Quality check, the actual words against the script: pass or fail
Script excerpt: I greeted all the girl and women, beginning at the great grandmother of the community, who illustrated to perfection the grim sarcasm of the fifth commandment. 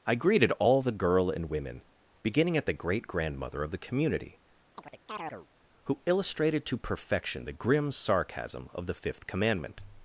pass